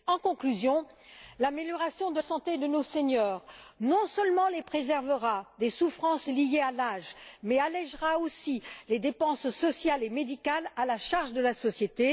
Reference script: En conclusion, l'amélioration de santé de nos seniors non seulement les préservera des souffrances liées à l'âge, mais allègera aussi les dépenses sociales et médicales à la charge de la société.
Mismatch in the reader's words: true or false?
false